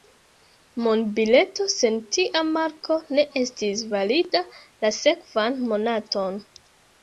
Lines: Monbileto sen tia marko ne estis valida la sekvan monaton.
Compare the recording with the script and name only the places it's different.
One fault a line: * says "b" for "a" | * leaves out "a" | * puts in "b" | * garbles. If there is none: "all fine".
all fine